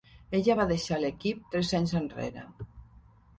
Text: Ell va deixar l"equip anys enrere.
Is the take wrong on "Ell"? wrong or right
wrong